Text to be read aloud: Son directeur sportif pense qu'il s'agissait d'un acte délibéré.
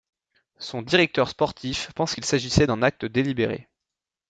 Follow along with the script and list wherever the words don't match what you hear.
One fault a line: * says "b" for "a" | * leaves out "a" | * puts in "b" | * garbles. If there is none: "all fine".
all fine